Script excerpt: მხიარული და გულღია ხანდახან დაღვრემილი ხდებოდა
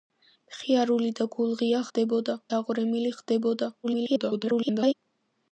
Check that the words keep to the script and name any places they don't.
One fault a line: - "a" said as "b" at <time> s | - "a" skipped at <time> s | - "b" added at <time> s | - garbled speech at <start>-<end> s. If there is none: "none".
- "ხანდახან" said as "ხდებოდა" at 1.9 s
- garbled speech at 3.8-4.9 s